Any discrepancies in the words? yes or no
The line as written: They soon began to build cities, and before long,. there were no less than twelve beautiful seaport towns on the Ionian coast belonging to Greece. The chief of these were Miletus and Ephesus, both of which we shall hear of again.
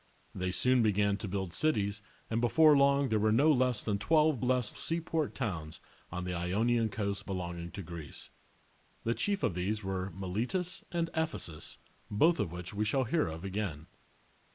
yes